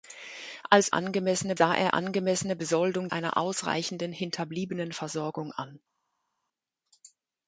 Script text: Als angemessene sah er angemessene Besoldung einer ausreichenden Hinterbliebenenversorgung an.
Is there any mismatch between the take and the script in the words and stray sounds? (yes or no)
no